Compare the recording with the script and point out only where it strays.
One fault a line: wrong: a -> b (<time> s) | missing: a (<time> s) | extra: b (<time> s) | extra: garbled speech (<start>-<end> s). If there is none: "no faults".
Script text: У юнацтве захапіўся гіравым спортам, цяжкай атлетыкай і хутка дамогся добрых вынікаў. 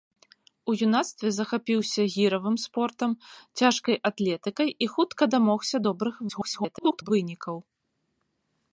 extra: garbled speech (6.3-7.1 s)